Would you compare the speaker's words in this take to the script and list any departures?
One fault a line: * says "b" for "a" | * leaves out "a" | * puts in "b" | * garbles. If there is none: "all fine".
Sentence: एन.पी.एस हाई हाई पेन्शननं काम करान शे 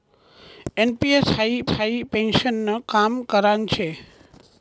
all fine